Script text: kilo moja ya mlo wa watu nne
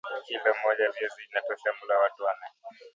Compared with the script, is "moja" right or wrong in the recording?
right